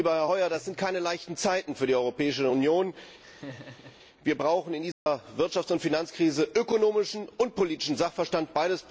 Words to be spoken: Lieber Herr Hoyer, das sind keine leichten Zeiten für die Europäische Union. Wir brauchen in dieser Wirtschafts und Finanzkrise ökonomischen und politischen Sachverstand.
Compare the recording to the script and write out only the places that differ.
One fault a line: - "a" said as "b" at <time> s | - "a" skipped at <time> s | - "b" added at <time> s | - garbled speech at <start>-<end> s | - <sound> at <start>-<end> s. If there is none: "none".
- laugh at 3.2-4.0 s
- dropout at 4.9-5.1 s